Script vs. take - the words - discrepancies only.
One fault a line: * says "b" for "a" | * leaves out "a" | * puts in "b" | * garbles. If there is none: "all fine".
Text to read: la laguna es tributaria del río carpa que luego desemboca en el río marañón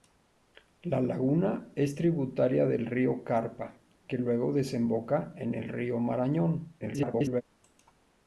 * garbles